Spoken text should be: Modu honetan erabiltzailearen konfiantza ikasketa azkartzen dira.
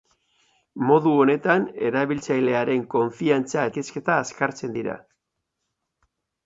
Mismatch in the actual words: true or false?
false